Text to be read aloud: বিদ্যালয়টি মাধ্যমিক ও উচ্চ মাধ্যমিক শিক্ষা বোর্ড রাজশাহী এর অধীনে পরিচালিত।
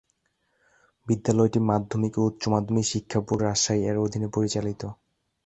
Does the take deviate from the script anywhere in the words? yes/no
no